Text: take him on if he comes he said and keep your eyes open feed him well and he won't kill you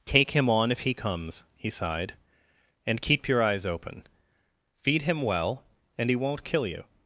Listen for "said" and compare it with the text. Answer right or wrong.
wrong